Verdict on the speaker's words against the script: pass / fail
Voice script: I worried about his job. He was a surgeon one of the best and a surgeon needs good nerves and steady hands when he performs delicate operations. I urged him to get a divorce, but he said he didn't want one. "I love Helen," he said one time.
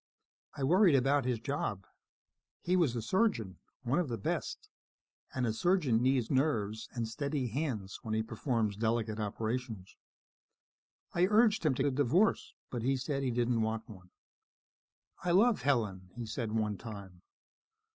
fail